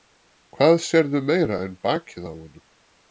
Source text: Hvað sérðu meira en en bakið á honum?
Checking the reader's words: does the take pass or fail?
fail